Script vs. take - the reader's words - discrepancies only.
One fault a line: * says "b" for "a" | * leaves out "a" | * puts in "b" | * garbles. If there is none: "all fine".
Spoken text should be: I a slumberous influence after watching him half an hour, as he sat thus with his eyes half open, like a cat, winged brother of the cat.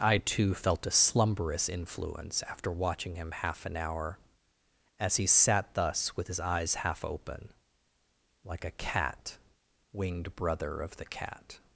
* puts in "too felt"